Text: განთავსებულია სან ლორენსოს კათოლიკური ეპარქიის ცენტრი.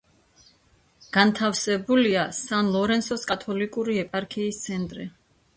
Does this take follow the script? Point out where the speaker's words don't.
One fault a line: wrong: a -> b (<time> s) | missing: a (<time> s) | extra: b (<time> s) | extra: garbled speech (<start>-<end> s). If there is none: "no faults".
no faults